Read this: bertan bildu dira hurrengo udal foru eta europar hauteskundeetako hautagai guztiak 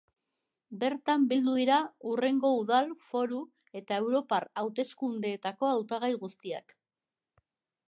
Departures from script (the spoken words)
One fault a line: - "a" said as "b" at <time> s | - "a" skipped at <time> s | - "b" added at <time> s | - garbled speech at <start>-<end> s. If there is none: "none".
none